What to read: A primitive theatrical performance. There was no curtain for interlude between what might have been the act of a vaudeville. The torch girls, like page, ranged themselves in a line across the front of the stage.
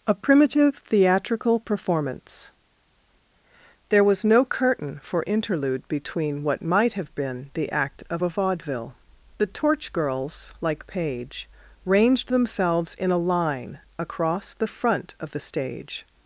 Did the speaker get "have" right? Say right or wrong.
right